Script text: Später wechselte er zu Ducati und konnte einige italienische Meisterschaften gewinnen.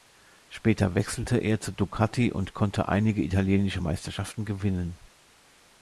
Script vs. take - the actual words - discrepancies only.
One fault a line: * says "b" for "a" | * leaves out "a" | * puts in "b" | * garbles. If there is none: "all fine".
all fine